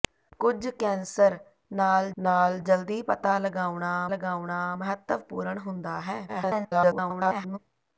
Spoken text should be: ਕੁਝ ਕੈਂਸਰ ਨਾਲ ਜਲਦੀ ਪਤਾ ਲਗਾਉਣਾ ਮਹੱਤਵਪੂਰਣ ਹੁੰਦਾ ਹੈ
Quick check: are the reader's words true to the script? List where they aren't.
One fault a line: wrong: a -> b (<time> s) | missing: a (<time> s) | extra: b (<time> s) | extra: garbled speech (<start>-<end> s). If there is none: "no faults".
extra: ਨਾਲ (2.2 s)
extra: ਲਗਾਉਣਾ (4.1 s)
extra: garbled speech (6.3-7.6 s)